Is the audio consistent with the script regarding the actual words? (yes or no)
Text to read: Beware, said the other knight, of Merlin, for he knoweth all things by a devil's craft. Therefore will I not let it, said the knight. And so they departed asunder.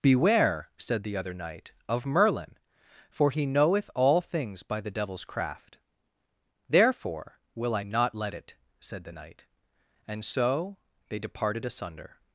no